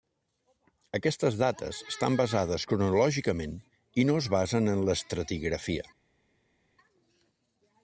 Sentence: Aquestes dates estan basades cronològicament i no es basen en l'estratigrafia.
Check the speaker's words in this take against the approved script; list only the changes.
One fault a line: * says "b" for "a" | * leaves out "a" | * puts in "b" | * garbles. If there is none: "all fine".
all fine